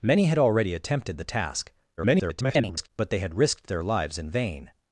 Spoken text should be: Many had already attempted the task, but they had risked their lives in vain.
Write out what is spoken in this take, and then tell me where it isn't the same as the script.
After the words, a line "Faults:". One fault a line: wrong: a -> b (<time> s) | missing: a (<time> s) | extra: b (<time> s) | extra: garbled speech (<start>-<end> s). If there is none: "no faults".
Many had already attempted the task, [garbled] but they had risked their lives in vain.
Faults:
extra: garbled speech (2.0-2.9 s)